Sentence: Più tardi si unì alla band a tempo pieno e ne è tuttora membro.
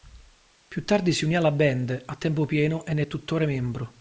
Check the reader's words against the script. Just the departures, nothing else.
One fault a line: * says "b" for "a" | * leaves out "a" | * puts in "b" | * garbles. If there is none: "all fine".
all fine